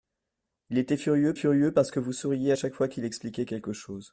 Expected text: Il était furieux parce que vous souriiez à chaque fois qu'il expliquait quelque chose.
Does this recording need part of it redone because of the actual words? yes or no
yes